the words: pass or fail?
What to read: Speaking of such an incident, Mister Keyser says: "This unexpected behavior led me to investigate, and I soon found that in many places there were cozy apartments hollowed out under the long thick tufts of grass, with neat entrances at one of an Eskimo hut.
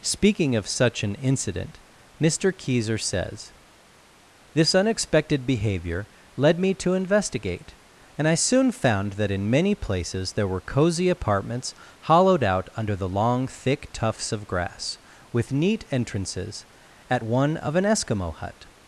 pass